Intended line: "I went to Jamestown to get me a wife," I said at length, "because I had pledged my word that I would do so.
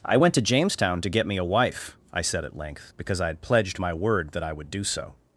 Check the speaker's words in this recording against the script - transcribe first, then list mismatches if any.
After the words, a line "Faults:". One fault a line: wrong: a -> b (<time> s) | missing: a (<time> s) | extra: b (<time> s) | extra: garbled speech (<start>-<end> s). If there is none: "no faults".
"I went to Jamestown to get me a wife," I said at length, "because I had pledged my word that I would do so.
Faults:
no faults